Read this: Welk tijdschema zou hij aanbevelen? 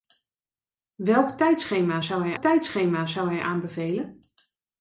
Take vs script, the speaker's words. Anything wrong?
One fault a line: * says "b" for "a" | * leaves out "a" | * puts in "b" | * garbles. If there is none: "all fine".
* puts in "tijdschema zou hij"